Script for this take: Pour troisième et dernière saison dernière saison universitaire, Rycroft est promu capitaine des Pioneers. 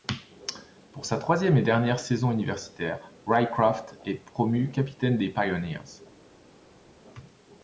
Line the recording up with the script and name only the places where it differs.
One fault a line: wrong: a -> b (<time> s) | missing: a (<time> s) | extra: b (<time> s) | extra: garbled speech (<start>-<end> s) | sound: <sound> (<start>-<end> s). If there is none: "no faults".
extra: sa (1.1 s)
missing: dernière saison (2.3 s)